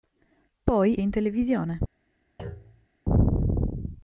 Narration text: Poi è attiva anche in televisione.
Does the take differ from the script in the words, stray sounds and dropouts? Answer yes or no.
yes